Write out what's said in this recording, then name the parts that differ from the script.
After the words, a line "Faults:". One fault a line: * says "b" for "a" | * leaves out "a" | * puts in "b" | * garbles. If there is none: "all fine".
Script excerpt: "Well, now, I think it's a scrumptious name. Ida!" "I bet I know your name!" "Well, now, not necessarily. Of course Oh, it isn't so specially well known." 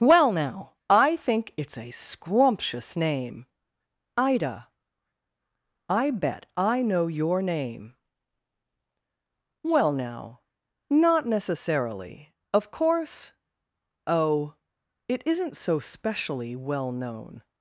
"Well, now, I think it's a scrumptious name. Ida!" "I bet I know your name!" "Well, now, not necessarily. Of course Oh, it isn't so specially well known."
Faults:
all fine